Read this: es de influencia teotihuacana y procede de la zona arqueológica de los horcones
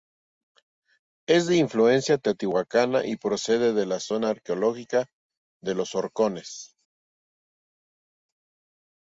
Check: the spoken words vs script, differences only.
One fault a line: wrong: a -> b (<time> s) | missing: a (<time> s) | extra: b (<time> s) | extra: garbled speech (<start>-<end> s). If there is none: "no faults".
no faults